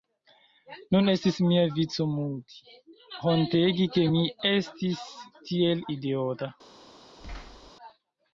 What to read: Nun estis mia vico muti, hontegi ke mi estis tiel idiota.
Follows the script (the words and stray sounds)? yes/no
no